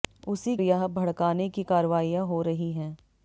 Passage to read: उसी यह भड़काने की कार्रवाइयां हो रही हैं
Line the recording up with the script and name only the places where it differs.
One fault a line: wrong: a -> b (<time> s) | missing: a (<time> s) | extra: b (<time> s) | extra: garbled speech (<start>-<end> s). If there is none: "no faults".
no faults